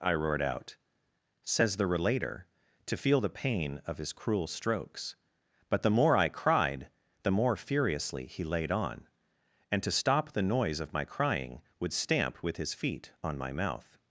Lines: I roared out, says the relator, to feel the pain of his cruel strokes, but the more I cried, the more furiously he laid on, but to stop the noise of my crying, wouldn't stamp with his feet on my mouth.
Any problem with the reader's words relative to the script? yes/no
yes